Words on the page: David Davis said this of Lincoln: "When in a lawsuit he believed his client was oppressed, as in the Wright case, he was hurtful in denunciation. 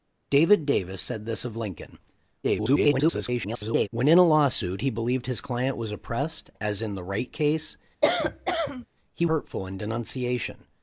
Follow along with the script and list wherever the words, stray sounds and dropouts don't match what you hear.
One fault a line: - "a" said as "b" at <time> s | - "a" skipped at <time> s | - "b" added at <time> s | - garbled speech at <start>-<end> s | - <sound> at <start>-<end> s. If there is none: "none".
- garbled speech at 2.4-3.9 s
- cough at 8.0-8.9 s
- "was" skipped at 9.3 s